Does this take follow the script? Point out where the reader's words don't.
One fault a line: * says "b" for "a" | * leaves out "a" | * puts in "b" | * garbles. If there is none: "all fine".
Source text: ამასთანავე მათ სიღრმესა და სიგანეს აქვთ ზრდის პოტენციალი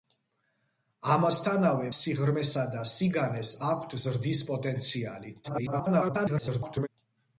* leaves out "მათ"
* garbles